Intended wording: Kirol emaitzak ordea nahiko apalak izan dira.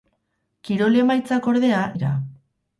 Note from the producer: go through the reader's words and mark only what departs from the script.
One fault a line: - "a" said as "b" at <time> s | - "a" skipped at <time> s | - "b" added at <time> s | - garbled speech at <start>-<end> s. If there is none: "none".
- "nahiko apalak izan" skipped at 1.8 s